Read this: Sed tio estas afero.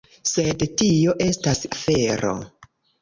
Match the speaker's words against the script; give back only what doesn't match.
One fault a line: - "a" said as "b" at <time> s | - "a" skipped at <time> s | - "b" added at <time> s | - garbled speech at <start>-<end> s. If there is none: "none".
none